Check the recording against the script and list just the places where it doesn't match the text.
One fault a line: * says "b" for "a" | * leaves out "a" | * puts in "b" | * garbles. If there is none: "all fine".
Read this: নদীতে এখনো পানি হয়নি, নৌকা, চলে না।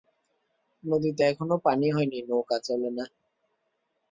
all fine